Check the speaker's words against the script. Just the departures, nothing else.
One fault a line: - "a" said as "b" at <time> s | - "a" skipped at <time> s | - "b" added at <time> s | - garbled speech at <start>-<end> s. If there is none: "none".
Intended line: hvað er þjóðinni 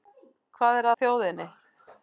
none